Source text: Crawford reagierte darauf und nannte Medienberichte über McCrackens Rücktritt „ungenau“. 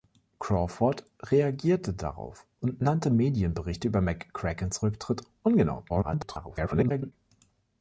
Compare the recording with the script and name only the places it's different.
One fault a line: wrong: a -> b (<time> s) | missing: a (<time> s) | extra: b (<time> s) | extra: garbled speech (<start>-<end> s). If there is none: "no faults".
extra: garbled speech (5.9-7.1 s)